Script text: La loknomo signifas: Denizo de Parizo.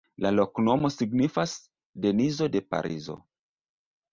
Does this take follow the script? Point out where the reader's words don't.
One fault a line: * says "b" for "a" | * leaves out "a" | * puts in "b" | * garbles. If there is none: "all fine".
all fine